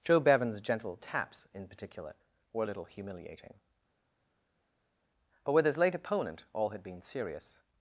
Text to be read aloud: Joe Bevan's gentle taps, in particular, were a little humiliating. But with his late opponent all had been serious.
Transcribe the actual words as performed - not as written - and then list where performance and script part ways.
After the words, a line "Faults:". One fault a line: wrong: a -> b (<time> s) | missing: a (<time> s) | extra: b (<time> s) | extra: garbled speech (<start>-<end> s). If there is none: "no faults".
Joe Bevan's gentle taps, in particular, were a little humiliating. But with his late opponent all had been serious.
Faults:
no faults